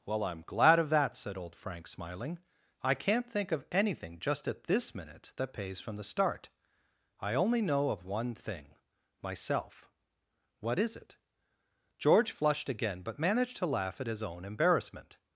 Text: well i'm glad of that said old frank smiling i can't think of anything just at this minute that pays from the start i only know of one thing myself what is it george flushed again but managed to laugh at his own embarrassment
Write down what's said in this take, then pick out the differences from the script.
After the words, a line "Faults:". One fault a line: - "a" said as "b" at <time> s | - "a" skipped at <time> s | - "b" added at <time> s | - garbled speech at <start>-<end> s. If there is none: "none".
well i'm glad of that said old frank smiling i can't think of anything just at this minute that pays from the start i only know of one thing myself what is it george flushed again but managed to laugh at his own embarrassment
Faults:
none